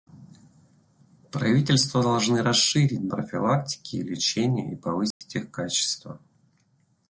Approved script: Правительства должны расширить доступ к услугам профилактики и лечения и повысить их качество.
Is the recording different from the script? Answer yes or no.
yes